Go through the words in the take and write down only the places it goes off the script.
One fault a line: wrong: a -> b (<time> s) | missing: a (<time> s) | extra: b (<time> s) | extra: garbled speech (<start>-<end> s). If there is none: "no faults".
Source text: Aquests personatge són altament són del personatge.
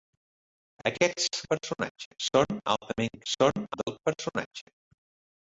no faults